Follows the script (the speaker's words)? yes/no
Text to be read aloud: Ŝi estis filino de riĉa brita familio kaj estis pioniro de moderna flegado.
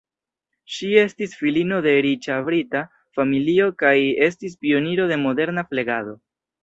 yes